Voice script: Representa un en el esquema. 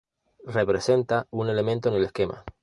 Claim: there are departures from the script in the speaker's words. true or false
true